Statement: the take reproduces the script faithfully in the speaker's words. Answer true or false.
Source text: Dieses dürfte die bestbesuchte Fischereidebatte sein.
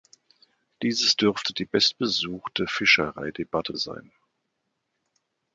true